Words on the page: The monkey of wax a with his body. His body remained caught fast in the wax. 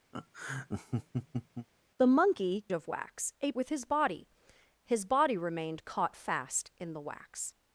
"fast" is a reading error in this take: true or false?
false